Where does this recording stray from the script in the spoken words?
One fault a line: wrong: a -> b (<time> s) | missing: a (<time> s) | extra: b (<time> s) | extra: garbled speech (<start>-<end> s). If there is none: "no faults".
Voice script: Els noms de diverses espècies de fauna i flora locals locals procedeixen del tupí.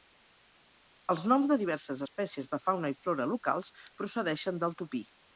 missing: locals (3.7 s)